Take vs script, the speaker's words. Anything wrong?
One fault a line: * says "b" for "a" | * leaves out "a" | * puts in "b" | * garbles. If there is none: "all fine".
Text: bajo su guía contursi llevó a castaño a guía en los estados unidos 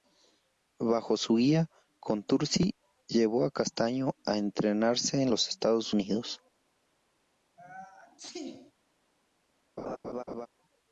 * says "entrenarse" for "guía"